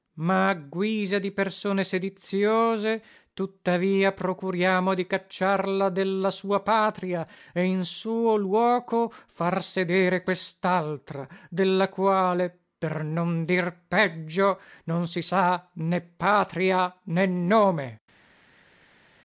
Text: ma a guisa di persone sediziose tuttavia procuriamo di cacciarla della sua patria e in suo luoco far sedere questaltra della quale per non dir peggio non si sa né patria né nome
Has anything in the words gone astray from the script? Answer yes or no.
no